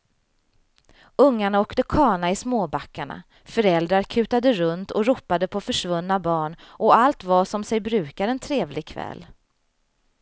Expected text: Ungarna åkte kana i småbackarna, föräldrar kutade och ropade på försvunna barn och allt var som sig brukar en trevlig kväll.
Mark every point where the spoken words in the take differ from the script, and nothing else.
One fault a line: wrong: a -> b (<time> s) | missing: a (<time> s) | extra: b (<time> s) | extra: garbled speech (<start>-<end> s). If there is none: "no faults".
extra: runt (4.5 s)